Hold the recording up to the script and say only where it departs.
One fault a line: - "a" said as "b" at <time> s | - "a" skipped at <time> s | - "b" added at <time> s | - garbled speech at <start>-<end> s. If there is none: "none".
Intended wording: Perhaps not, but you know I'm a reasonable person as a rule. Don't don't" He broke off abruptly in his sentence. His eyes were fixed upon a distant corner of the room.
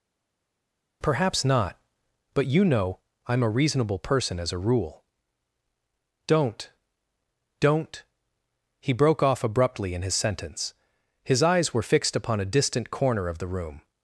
none